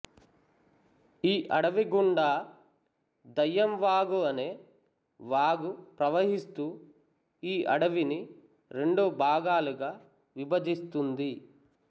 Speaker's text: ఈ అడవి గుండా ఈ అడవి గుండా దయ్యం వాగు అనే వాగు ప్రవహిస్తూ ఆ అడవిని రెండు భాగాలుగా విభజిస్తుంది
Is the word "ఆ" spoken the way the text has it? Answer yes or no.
no